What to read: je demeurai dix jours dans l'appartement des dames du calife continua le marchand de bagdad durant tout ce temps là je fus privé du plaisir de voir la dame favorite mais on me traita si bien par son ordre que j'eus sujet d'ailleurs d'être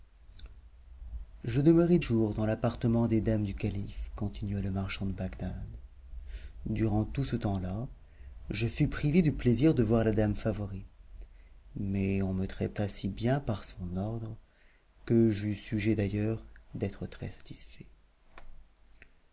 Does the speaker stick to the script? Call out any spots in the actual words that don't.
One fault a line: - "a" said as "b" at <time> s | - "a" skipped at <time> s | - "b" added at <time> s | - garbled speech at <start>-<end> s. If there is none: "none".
- "dix" skipped at 2.0 s